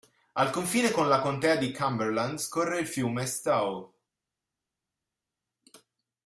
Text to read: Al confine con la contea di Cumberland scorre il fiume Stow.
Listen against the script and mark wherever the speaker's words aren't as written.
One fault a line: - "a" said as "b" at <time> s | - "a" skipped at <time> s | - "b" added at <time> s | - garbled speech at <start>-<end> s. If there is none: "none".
none